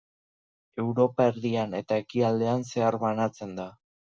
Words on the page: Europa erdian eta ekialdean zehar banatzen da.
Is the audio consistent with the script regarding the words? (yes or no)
yes